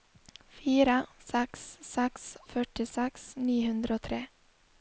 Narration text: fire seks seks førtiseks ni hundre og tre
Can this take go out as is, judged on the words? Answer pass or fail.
pass